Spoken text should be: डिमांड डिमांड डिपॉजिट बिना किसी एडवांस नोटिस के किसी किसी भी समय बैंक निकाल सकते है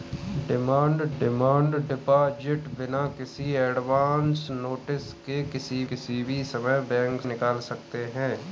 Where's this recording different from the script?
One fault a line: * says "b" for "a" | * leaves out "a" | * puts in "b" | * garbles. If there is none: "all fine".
all fine